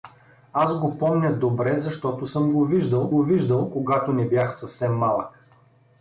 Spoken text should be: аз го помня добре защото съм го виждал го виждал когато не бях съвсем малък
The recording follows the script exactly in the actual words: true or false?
true